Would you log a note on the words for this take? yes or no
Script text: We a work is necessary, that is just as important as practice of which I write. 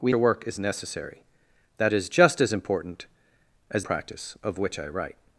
no